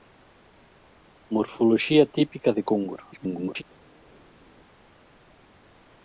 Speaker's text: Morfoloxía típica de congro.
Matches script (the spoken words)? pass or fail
fail